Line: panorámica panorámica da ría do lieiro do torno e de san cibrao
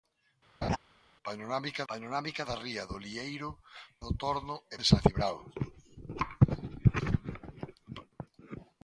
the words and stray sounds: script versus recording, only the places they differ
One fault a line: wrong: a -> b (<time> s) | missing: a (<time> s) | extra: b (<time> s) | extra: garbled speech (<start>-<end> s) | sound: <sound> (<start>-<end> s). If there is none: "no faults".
sound: laugh (0.6-0.8 s)